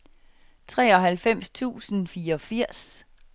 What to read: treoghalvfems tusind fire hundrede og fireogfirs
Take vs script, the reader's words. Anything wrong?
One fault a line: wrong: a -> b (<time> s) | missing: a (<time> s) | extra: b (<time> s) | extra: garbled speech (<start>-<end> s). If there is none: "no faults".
missing: fire hundrede og (2.1 s)